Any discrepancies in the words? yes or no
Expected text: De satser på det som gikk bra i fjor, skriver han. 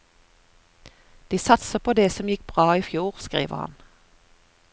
no